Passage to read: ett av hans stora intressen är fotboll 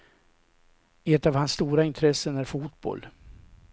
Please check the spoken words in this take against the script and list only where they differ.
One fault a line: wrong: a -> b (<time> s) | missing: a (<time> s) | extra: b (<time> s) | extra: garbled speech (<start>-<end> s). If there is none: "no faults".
no faults